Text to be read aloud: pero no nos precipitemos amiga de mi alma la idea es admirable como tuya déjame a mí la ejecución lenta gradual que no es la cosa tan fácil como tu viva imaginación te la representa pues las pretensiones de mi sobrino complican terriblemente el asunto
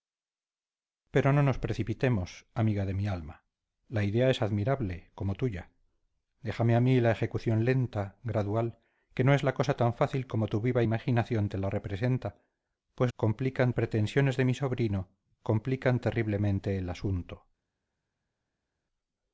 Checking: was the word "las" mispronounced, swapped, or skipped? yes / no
yes